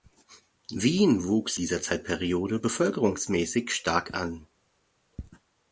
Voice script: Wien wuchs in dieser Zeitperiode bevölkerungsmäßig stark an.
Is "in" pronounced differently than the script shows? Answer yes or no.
yes